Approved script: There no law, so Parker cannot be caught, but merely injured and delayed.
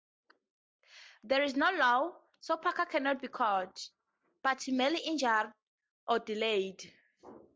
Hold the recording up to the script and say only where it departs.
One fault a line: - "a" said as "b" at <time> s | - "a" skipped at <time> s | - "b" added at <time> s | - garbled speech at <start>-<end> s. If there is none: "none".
- "is" added at 1.4 s
- "and" said as "or" at 6.1 s